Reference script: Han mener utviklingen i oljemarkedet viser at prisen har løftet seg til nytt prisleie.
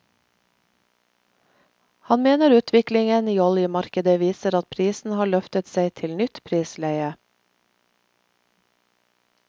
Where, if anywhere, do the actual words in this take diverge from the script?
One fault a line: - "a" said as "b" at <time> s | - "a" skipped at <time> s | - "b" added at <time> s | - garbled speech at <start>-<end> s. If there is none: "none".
none